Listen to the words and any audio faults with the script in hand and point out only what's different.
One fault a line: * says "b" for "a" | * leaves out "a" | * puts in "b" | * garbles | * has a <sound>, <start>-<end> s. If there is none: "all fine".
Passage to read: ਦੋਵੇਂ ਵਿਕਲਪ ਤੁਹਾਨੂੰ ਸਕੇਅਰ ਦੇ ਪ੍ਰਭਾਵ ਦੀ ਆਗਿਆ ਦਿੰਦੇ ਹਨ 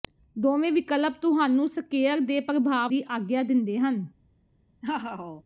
* has a laugh, 4.8-5.4 s